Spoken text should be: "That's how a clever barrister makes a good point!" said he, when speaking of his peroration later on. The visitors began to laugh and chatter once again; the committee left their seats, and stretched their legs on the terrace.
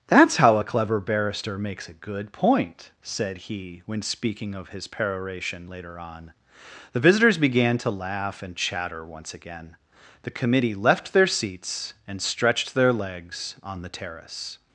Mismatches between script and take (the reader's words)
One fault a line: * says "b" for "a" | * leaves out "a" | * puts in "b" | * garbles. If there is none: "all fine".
all fine